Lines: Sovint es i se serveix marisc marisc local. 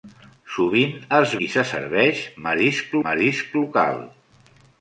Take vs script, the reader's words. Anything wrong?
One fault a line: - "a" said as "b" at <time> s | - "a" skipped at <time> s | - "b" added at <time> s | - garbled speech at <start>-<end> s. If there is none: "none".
none